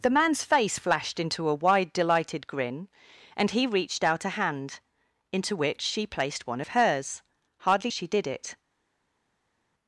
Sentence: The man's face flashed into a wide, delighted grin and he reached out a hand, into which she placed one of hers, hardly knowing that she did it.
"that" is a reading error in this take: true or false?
true